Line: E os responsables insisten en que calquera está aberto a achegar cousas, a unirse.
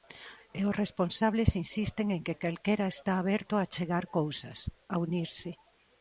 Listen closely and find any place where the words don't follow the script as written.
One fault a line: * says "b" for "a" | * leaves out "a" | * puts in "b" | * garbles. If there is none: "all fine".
all fine